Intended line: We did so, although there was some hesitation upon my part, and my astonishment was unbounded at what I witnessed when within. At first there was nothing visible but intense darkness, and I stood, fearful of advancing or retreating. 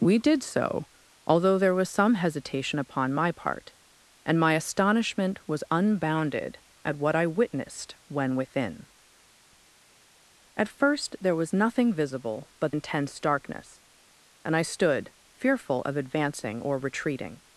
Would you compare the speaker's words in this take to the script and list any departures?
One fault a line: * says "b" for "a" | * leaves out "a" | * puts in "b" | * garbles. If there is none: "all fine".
all fine